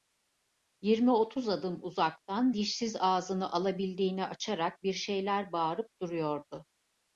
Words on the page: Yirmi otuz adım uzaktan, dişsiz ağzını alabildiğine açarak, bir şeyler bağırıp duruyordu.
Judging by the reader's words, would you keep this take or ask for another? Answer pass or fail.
pass